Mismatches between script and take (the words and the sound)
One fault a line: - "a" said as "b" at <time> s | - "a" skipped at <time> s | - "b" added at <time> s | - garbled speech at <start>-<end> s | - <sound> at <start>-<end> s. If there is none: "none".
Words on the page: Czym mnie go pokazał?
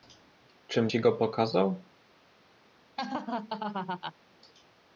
- "mnie" said as "ci" at 0.9 s
- laugh at 3.0-4.1 s